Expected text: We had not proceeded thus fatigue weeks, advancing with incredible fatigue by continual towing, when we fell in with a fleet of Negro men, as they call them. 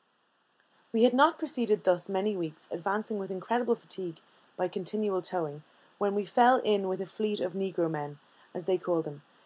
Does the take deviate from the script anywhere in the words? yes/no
yes